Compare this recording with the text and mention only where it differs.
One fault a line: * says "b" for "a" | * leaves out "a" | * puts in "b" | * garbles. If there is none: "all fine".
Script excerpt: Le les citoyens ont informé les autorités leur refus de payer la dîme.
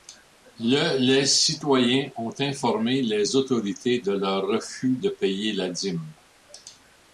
* puts in "de"